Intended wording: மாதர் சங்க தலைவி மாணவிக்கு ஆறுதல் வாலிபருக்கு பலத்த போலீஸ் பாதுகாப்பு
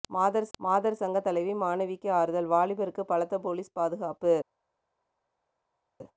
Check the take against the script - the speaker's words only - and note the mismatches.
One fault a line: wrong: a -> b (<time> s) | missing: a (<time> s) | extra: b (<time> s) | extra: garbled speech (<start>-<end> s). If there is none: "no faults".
extra: மாதர் (0.6 s)